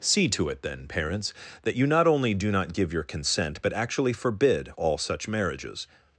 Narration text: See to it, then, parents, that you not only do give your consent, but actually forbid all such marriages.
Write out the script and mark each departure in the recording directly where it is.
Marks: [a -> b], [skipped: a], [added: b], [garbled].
See to it, then, parents, that you not only do [added: not] give your consent, but actually forbid all such marriages.